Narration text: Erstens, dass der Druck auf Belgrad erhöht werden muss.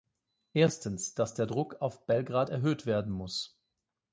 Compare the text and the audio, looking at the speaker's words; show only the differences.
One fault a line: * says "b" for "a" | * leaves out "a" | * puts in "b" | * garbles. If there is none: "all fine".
all fine